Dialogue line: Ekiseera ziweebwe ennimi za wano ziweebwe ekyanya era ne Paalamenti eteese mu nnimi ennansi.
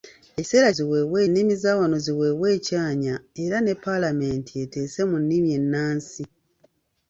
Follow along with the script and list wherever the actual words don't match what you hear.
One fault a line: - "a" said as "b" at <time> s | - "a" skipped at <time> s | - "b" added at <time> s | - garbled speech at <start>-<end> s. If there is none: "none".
none